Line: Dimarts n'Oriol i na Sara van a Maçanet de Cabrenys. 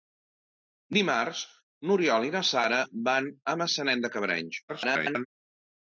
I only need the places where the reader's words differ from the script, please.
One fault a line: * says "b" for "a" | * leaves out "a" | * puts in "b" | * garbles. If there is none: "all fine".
* garbles